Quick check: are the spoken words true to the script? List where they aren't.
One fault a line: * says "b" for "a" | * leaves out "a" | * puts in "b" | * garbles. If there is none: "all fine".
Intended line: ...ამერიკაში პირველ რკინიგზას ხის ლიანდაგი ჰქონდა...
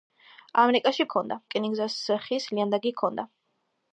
* says "ჰქონდა" for "პირველ"